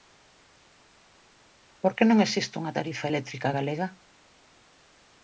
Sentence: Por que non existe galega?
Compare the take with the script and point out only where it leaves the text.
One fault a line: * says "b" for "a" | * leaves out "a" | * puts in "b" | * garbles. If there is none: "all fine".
* puts in "unha tarifa eléctrica"